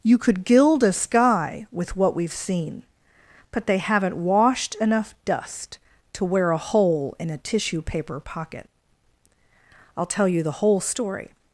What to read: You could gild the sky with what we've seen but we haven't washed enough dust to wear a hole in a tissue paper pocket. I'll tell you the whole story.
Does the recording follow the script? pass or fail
fail